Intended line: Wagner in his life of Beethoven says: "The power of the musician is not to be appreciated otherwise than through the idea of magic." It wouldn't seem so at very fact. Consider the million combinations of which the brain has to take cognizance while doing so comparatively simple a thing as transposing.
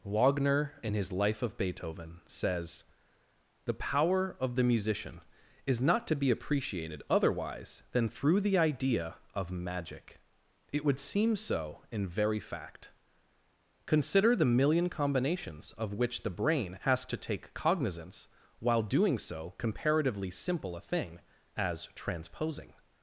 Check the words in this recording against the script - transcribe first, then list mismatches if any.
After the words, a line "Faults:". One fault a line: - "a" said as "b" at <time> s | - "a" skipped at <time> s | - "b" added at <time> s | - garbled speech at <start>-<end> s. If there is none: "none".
Wagner in his life of Beethoven says: "The power of the musician is not to be appreciated otherwise than through the idea of magic." It would seem so in very fact. Consider the million combinations of which the brain has to take cognizance while doing so comparatively simple a thing as transposing.
Faults:
- "wouldn't" said as "would" at 10.8 s
- "at" said as "in" at 11.9 s